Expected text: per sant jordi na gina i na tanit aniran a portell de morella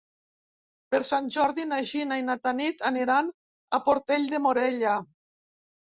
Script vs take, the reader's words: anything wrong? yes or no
no